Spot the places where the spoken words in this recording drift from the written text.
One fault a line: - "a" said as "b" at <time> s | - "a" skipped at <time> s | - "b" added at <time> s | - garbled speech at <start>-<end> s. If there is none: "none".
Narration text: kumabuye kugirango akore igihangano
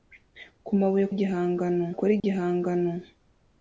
- "kugirango" said as "igihangano" at 1.1 s